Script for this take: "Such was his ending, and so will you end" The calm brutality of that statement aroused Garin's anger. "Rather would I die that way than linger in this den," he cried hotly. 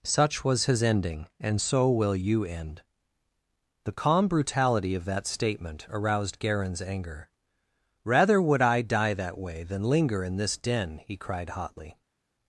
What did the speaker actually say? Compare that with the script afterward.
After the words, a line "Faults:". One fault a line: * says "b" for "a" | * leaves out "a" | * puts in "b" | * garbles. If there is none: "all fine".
"Such was his ending, and so will you end" The calm brutality of that statement aroused Garin's anger. "Rather would I die that way than linger in this den," he cried hotly.
Faults:
all fine